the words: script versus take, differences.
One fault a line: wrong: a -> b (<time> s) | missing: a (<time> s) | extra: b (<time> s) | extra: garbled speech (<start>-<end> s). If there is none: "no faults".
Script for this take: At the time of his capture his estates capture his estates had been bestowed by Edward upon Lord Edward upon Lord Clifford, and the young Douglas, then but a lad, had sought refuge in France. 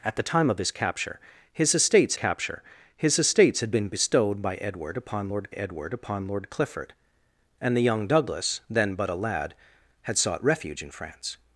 no faults